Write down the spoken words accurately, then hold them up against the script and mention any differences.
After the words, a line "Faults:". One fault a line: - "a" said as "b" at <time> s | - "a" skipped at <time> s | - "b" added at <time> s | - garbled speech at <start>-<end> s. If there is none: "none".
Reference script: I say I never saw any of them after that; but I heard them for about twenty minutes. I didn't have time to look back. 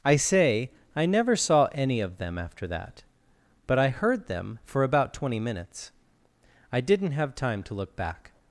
I say I never saw any of them after that; but I heard them for about twenty minutes. I didn't have time to look back.
Faults:
none